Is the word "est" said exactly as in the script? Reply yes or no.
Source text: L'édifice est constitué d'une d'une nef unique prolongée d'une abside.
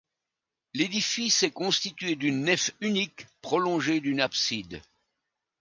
yes